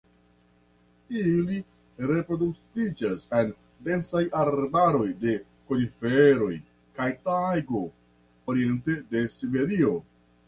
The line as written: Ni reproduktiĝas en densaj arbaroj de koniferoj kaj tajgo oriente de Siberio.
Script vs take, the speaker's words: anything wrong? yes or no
yes